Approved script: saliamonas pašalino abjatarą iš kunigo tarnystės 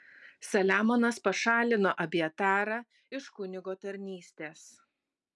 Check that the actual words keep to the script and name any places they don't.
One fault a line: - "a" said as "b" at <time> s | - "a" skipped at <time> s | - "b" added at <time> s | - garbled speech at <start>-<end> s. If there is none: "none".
none